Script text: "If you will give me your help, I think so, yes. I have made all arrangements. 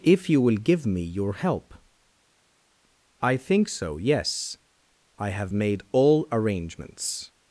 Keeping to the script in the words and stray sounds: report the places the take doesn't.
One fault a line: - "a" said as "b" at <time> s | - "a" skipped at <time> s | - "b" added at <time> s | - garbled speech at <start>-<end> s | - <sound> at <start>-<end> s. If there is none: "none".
none